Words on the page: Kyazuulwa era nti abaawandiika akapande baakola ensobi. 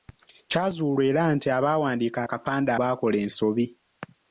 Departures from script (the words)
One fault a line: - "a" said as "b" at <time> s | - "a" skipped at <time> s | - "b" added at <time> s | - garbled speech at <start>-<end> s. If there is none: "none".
none